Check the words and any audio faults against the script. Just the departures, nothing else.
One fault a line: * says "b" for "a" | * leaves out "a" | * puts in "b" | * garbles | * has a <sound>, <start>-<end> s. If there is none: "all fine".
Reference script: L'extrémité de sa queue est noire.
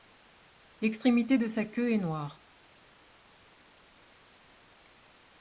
all fine